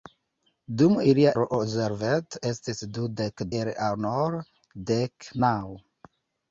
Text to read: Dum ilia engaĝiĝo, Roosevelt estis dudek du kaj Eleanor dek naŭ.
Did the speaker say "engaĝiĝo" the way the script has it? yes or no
no